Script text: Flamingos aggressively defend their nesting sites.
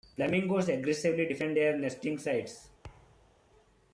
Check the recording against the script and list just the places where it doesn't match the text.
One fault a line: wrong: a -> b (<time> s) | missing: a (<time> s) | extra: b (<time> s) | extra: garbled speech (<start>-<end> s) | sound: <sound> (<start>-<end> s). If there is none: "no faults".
sound: thud (2.8-3.5 s)